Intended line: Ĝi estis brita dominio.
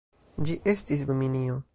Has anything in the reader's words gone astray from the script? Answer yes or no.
yes